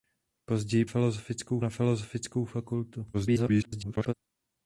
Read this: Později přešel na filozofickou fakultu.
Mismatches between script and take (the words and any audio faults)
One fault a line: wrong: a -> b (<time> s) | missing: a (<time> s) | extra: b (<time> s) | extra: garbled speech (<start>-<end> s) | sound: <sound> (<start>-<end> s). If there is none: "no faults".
wrong: přešel -> filozofickou (0.8 s)
extra: garbled speech (3.1-4.1 s)